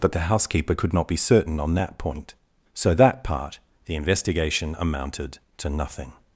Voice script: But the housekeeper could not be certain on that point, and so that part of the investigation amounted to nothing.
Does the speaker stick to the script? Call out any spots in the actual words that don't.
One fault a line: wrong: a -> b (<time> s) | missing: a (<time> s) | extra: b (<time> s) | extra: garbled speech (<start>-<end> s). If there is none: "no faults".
missing: and (2.3 s)
missing: of (3.6 s)